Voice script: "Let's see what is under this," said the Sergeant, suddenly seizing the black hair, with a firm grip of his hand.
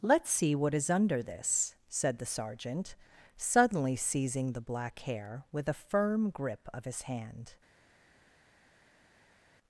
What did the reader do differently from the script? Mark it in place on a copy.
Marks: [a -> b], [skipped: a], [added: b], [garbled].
"Let's see what is under this," said the Sergeant, suddenly seizing the black hair, with a firm grip of his hand.